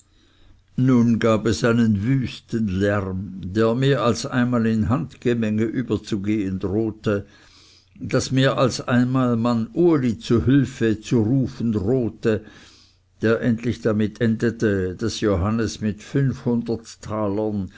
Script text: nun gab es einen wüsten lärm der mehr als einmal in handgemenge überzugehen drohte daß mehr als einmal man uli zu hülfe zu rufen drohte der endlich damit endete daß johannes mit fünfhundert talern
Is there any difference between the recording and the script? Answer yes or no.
no